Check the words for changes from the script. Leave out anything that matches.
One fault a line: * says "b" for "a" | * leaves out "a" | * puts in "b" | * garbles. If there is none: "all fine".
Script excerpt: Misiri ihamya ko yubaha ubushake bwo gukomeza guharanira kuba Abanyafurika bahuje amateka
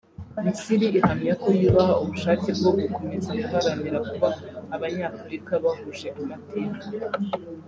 all fine